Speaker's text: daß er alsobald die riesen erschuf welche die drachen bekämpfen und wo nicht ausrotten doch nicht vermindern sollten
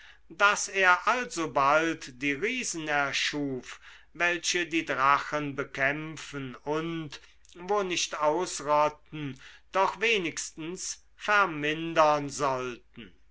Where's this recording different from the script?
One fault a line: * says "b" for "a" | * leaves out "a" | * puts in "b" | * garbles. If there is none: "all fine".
* says "wenigstens" for "nicht"